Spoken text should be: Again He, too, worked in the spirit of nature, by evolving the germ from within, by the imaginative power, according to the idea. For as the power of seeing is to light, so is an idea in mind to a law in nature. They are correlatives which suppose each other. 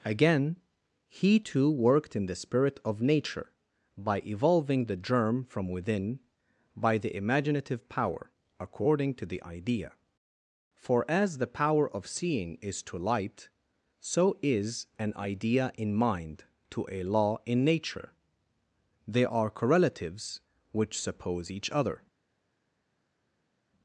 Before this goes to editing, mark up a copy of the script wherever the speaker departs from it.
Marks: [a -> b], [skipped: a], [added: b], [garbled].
Again He, too, worked in the spirit of nature, by evolving the germ from within, by the imaginative power, according to the idea. For as the power of seeing is to light, so is an idea in mind to a law in nature. They are correlatives which suppose each other.